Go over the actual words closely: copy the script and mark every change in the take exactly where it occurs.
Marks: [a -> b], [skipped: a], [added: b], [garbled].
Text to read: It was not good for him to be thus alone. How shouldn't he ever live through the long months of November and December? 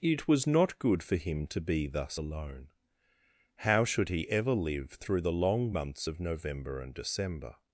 It was not good for him to be thus alone. How [shouldn't -> should] he ever live through the long months of November and December?